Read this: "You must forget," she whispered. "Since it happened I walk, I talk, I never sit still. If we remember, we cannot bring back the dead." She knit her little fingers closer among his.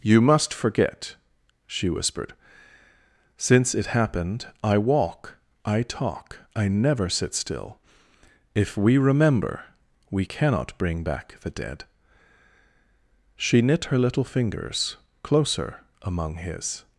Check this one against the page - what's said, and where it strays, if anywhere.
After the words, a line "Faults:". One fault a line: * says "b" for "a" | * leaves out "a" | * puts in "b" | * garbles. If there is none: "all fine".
"You must forget," she whispered. "Since it happened I walk, I talk, I never sit still. If we remember, we cannot bring back the dead." She knit her little fingers closer among his.
Faults:
all fine